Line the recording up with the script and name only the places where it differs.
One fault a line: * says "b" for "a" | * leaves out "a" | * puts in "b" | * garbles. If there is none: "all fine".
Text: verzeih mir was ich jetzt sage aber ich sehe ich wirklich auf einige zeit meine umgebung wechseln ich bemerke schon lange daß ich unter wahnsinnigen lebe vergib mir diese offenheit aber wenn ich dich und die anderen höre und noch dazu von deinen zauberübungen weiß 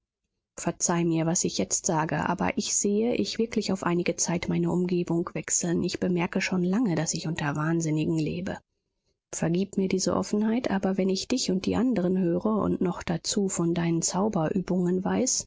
all fine